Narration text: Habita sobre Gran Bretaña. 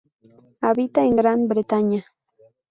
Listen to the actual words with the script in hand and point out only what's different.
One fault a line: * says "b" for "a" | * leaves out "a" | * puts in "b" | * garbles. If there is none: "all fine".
* says "en" for "sobre"